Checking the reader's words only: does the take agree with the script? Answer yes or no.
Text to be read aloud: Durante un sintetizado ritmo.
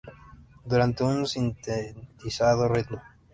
yes